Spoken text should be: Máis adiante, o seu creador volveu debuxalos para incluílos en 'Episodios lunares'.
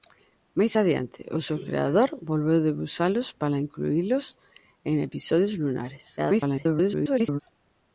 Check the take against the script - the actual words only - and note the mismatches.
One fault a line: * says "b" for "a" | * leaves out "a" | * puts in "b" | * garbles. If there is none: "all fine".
* garbles